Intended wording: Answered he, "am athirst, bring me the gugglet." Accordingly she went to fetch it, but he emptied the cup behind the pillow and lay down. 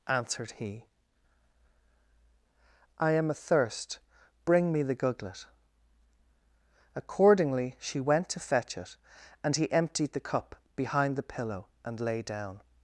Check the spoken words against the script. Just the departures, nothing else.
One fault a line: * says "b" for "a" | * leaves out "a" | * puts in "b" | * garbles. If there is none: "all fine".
* puts in "I"
* says "and" for "but"